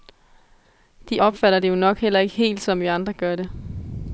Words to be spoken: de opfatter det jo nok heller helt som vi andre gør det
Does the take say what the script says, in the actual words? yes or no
no